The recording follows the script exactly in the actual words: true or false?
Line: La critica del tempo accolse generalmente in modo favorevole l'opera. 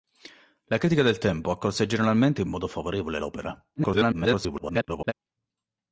false